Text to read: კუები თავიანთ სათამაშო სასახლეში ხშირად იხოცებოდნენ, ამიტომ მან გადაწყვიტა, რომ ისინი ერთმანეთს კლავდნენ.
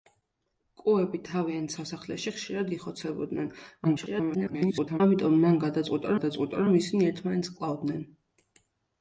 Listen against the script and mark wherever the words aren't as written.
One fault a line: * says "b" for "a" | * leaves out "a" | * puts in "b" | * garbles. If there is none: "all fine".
* leaves out "სათამაშო"
* garbles
* puts in "გადაწყვიტა"